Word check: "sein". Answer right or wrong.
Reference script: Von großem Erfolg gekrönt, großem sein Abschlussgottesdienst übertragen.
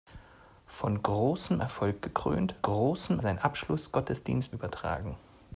right